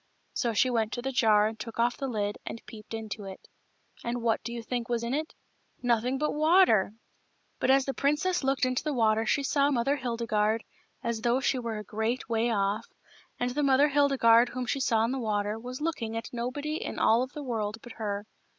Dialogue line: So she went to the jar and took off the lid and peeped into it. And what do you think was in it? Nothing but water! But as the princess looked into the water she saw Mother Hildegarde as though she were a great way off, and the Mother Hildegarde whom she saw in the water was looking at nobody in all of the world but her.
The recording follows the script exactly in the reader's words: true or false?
true